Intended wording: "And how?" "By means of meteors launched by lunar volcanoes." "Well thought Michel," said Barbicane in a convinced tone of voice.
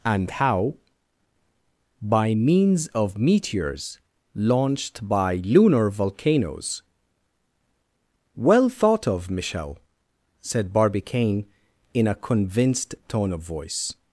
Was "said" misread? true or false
false